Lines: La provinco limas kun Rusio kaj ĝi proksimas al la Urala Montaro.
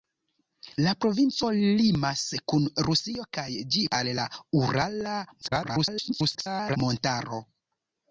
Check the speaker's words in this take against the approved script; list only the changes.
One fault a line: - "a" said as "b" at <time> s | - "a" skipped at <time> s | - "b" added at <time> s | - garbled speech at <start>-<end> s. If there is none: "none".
- "proksimas" skipped at 3.9 s
- garbled speech at 5.4-6.8 s